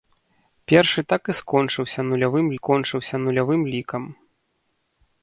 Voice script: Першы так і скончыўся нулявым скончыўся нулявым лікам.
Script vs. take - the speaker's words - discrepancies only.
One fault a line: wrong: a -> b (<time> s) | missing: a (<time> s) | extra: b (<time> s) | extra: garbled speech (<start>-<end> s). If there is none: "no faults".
no faults